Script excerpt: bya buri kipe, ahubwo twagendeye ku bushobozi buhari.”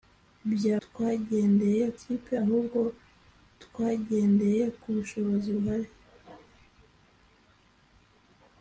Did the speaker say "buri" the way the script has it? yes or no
no